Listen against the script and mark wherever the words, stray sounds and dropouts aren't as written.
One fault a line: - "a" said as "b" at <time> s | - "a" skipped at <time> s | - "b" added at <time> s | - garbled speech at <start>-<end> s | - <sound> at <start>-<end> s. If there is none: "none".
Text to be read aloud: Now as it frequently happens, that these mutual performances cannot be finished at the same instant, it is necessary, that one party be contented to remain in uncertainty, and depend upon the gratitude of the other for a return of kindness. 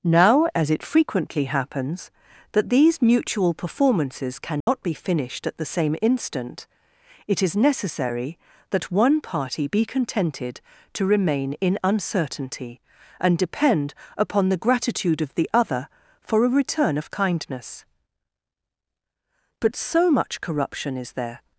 - dropout at 4.6-4.7 s
- "But so much corruption is there" added at 19.6 s